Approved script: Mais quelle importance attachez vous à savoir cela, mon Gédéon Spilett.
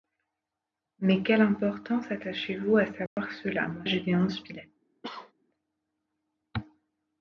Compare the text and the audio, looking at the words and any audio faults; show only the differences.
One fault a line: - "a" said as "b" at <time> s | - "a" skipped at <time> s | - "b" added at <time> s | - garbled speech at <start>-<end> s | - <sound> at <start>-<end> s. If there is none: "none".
- dropout at 3.1-3.2 s
- cough at 5.0-5.3 s